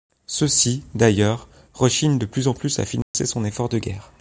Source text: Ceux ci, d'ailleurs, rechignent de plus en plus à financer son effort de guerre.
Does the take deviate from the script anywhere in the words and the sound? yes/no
yes